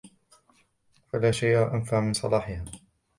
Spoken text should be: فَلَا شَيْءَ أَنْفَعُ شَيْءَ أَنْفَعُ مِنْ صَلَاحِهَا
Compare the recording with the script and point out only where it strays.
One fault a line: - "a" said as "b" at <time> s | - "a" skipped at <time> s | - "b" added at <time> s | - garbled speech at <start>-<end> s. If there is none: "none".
- "شَيْءَ أَنْفَعُ" skipped at 2.0 s